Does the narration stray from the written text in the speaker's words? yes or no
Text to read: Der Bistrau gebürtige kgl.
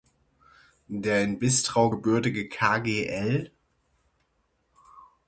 yes